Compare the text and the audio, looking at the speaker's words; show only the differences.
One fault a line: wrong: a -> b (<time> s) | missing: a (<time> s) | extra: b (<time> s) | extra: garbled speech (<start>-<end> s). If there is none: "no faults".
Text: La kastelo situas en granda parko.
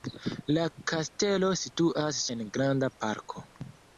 no faults